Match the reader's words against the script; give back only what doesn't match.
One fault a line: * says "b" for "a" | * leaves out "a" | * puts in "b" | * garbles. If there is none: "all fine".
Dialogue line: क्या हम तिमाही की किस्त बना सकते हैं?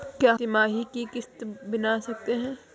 * leaves out "हम"